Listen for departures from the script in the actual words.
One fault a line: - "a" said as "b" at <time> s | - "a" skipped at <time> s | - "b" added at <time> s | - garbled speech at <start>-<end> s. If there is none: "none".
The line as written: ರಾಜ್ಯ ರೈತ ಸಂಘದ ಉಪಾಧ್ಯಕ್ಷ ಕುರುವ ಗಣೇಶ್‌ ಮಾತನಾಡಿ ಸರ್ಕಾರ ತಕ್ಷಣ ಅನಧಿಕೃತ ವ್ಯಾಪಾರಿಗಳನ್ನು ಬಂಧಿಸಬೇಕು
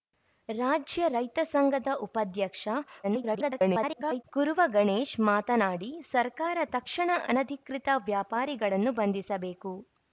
- garbled speech at 3.0-4.2 s